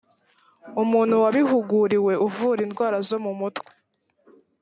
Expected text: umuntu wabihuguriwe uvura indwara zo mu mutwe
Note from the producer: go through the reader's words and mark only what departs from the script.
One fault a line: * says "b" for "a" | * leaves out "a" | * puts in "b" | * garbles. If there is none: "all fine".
all fine